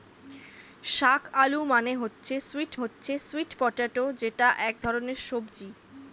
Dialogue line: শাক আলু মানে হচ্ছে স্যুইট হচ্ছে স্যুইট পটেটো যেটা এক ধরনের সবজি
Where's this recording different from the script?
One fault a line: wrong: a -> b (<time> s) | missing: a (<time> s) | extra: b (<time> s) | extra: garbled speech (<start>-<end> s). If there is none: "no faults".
no faults